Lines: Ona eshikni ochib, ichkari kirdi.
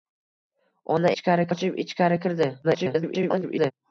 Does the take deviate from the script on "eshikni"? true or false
true